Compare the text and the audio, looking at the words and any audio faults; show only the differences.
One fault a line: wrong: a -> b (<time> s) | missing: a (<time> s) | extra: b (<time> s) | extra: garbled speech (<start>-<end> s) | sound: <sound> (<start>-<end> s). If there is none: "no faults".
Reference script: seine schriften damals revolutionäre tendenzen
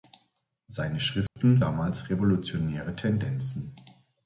sound: dropout (1.3-1.4 s)